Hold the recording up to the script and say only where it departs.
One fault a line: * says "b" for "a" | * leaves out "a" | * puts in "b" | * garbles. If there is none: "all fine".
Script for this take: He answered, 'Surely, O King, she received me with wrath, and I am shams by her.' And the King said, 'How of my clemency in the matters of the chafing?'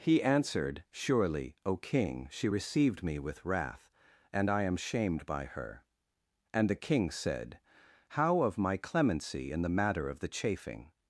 * says "shamed" for "shams"
* says "matter" for "matters"